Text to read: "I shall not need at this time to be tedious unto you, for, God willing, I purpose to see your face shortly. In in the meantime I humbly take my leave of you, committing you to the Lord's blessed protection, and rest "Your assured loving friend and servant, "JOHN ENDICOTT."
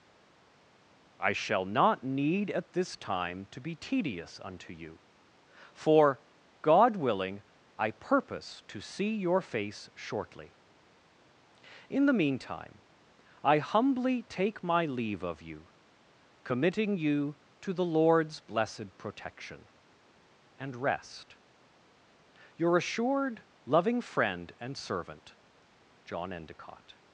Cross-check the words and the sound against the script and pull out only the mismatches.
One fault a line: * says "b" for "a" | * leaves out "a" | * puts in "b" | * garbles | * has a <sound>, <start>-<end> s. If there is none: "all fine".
* leaves out "in"